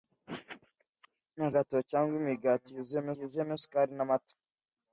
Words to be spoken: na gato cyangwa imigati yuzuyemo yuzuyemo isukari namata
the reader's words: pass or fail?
pass